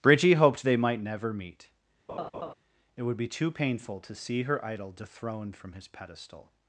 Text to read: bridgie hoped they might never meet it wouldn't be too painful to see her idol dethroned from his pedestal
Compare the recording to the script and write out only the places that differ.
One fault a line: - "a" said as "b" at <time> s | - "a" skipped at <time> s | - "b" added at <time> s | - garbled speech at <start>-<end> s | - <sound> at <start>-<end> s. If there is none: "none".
- laugh at 2.1-2.5 s
- "wouldn't" said as "would" at 3.0 s